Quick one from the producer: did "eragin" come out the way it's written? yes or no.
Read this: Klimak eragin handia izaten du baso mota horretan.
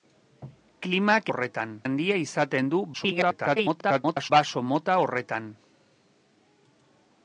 no